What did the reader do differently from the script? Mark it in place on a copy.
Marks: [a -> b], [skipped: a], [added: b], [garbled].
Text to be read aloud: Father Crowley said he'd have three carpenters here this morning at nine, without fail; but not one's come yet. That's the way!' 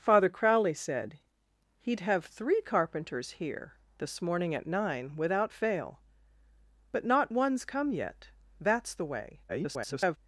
Father Crowley said he'd have three carpenters here this morning at nine, without fail; but not one's come yet. That's the way!' [garbled]